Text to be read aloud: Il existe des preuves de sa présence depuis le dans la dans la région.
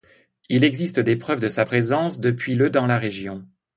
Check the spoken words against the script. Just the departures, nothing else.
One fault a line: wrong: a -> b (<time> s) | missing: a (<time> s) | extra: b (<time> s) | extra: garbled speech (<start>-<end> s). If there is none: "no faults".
missing: dans la (3.0 s)